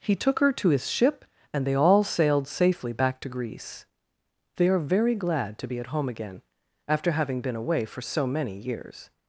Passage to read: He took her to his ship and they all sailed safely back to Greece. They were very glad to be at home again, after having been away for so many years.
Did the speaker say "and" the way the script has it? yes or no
yes